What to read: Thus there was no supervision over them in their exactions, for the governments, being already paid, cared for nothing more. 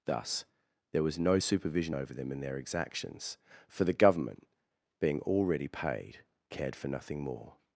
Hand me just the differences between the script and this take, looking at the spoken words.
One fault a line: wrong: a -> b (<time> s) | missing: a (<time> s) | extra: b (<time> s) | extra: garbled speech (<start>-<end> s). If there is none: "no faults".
wrong: governments -> government (3.9 s)